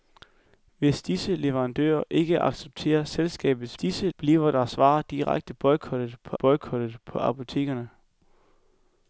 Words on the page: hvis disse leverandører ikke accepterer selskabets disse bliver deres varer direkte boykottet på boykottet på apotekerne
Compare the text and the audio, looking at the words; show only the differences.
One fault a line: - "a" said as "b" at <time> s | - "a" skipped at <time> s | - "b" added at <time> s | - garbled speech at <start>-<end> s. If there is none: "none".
none